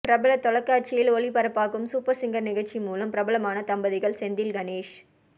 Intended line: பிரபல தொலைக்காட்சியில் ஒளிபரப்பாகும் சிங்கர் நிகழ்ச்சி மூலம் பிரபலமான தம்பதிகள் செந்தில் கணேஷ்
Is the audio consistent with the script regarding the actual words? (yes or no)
no